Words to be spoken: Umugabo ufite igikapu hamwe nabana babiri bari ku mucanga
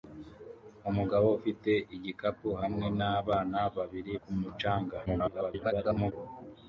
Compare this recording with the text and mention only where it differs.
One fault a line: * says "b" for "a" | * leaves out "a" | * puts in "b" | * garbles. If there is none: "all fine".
* leaves out "bari"
* garbles